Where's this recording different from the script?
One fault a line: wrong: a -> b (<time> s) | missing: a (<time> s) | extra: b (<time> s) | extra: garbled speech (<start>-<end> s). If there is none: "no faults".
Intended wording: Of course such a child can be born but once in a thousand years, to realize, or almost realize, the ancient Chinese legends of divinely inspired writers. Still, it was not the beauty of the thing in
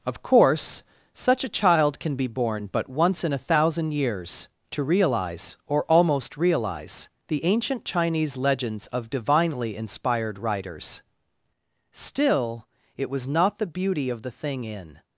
no faults